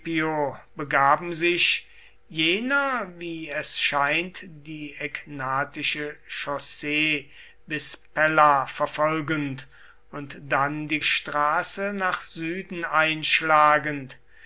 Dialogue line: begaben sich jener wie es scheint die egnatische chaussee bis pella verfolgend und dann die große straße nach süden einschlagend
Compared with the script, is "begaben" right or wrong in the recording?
right